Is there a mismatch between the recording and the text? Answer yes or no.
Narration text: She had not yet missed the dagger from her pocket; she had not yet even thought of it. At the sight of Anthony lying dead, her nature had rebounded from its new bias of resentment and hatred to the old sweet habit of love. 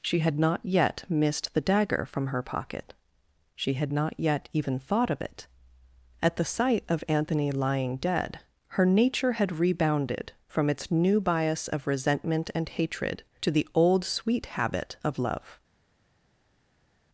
no